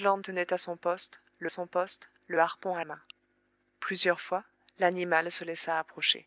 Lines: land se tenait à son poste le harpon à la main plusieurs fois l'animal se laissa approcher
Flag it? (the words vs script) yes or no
yes